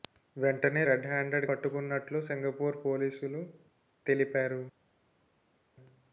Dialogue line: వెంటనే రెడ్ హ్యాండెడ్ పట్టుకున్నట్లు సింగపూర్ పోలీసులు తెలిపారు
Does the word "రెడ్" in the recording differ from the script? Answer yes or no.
no